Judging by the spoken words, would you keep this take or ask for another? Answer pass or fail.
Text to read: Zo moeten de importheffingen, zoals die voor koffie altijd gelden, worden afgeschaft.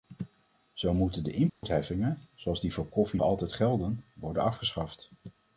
pass